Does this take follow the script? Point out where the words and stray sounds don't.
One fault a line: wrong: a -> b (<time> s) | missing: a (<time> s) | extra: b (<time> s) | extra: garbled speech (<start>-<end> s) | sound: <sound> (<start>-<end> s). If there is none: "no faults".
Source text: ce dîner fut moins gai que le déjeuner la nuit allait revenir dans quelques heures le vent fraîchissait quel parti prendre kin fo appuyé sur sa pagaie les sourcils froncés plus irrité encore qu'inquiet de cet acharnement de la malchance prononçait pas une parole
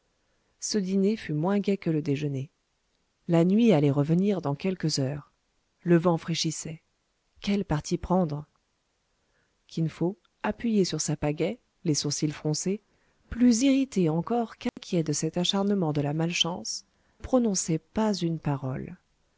sound: dropout (14.7-14.8 s)